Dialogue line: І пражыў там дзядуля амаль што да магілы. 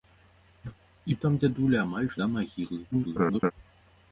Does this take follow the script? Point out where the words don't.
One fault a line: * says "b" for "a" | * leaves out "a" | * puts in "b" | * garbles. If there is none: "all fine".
* leaves out "пражыў"
* leaves out "што"
* garbles